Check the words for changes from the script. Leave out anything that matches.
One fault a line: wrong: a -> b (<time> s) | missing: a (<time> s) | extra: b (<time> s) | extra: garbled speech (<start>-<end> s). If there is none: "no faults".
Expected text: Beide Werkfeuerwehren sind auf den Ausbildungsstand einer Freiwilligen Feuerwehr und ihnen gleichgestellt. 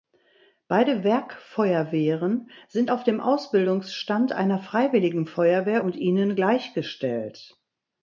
wrong: den -> dem (3.0 s)